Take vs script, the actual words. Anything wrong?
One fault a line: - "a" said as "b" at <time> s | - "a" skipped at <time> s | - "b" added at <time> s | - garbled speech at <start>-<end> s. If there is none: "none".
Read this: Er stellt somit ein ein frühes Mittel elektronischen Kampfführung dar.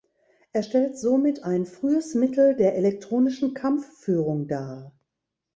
- "ein" skipped at 1.7 s
- "der" added at 2.6 s